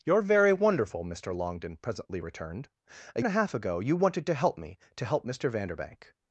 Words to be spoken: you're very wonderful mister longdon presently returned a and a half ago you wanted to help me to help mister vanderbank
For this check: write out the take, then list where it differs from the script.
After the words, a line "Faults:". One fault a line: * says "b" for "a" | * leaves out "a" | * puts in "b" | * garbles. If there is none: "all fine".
you're very wonderful mister longdon presently returned a and a half ago you wanted to help me to help mister vanderbank
Faults:
all fine